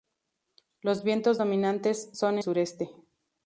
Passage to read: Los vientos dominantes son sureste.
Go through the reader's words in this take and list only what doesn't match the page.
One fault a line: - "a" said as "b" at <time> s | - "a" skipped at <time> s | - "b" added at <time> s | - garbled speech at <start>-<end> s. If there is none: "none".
none